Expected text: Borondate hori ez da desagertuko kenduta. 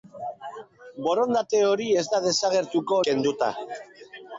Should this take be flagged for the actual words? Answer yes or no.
no